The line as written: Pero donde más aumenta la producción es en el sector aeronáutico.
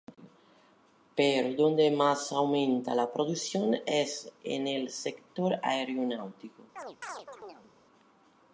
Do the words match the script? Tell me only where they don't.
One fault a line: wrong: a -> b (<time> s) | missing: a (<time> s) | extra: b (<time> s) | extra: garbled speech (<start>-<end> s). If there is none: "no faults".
no faults